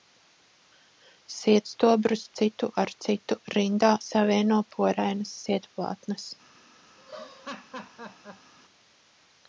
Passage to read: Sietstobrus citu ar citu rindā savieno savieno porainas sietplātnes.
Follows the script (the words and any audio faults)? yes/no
no